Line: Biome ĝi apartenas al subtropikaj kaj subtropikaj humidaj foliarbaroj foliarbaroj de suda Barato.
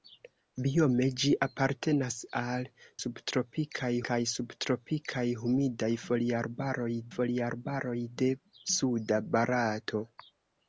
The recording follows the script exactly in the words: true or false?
true